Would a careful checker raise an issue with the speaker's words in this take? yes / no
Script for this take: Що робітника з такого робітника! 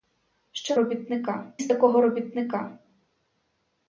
no